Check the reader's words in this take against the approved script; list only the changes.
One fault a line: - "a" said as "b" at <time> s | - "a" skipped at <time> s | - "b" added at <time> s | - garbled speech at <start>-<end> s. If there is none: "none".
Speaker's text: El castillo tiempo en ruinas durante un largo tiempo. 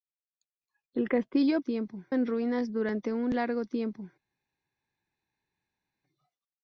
none